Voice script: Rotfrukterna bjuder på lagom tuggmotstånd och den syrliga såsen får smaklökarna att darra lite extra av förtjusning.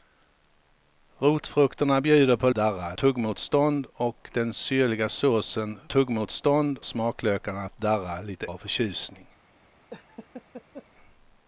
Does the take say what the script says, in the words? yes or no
no